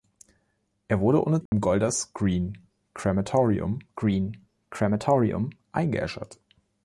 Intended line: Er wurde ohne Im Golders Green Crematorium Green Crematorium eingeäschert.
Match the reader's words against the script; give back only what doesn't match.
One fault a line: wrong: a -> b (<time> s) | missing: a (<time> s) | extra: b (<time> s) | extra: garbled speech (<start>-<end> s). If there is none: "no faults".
no faults